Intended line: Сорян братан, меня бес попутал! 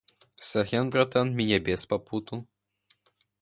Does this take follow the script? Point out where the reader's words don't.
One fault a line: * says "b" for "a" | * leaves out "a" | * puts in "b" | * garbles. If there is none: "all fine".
all fine